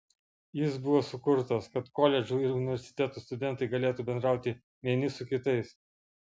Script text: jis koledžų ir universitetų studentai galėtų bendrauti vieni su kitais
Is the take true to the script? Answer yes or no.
no